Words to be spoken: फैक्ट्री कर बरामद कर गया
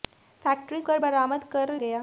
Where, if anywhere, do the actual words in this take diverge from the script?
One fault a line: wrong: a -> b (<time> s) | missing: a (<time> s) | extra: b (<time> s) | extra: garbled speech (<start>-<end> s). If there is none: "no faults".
no faults